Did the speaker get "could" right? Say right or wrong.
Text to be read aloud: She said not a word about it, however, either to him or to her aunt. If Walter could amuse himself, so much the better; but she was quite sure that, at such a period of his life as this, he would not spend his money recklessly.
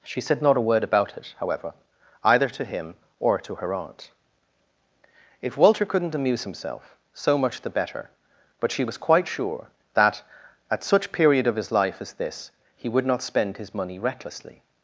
wrong